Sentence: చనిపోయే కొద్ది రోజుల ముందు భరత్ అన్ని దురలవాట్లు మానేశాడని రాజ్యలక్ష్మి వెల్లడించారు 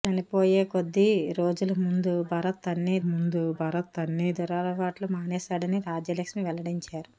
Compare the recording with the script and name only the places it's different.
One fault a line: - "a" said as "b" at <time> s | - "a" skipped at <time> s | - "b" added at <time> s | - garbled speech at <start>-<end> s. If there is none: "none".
- "ముందు భరత్ అన్ని" added at 3.1 s